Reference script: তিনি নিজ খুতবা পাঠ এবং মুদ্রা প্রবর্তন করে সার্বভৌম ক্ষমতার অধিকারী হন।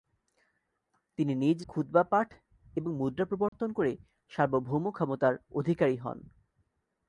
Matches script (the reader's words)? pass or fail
pass